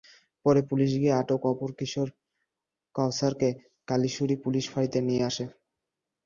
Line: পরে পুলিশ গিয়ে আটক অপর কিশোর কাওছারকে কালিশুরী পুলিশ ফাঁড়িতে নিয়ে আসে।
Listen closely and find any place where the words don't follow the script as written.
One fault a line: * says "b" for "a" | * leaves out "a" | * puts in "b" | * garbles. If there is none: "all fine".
all fine